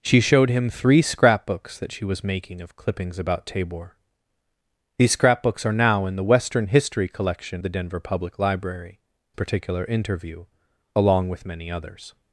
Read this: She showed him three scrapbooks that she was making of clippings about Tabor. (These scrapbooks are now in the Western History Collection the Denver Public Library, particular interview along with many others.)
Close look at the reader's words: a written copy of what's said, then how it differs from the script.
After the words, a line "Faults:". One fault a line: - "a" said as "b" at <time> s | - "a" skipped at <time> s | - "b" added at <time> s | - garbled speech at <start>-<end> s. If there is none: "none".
She showed him three scrapbooks that she was making of clippings about Tabor. (These scrapbooks are now in the Western History Collection the Denver Public Library, particular interview along with many others.)
Faults:
none